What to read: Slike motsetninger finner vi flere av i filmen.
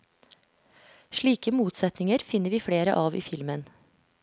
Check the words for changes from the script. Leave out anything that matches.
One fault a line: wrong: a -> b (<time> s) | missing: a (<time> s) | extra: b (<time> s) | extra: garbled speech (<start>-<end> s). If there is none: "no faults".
no faults